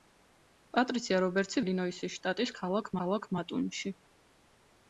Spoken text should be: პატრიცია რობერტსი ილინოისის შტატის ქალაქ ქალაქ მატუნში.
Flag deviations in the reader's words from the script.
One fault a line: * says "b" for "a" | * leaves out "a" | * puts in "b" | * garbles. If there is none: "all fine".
all fine